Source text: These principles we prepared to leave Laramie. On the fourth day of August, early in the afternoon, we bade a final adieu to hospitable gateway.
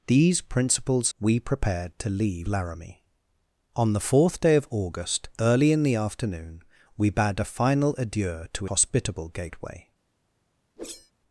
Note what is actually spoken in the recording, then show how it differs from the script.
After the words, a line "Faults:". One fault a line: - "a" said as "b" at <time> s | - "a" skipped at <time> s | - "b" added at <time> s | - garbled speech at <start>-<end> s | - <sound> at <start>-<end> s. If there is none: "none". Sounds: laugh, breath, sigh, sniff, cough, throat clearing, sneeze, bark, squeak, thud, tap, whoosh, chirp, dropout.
These principles we prepared to leave Laramie. On the fourth day of August, early in the afternoon, we bade a final adieu to hospitable gateway.
Faults:
- whoosh at 10.8-11.1 s